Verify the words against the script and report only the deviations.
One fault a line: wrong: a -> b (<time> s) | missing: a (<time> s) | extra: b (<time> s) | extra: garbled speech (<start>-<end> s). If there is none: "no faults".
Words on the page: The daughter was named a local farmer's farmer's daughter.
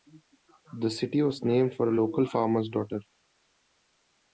wrong: daughter -> city (0.9 s)
extra: for (1.8 s)
missing: farmer's (2.7 s)